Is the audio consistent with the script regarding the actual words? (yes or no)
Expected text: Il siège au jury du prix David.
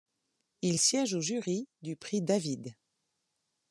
yes